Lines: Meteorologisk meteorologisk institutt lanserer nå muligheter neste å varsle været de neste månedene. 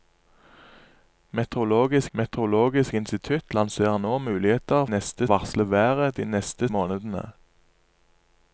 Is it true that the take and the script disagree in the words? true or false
false